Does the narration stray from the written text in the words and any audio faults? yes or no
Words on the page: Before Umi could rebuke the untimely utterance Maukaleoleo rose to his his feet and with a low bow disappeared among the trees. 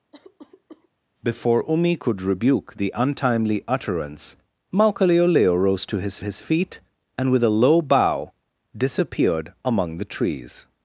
yes